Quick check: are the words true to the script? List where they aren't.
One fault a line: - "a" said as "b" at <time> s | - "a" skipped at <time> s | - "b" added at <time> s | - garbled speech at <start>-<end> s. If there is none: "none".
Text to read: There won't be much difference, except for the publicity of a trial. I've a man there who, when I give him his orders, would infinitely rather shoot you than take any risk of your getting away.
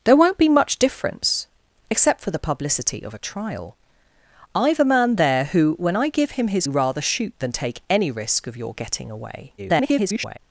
- "orders would infinitely" skipped at 6.7 s
- "you" skipped at 7.3 s
- garbled speech at 9.6-10.4 s